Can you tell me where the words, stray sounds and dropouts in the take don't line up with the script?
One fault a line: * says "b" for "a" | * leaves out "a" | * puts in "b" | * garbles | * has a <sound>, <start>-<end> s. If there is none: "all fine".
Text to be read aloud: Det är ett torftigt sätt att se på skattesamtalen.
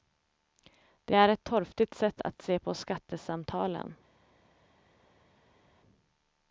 all fine